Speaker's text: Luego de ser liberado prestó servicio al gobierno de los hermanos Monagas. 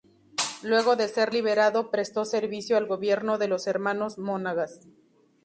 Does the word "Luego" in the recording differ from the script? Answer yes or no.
no